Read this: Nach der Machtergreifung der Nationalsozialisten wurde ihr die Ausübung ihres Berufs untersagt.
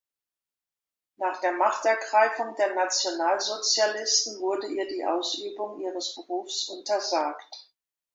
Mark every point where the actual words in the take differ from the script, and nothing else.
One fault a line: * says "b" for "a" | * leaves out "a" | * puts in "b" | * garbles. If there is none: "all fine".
all fine